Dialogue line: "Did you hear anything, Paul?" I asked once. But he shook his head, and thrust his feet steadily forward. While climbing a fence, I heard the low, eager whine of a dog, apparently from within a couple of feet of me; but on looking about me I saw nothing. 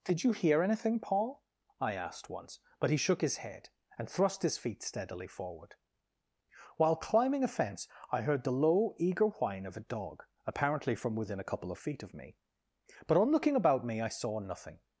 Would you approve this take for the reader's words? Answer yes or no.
yes